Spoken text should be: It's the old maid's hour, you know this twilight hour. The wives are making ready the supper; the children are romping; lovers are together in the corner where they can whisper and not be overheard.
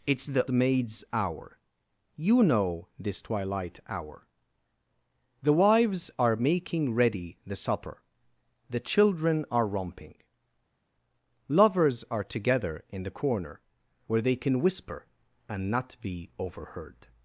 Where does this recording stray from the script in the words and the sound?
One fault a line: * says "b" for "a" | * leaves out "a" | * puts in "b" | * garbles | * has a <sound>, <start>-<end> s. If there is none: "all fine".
* leaves out "old"